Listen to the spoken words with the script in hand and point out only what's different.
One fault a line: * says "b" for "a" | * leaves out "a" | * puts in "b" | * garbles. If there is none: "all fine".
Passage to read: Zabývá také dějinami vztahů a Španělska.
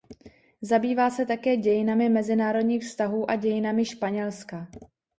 * puts in "se"
* puts in "mezinárodních"
* puts in "dějinami"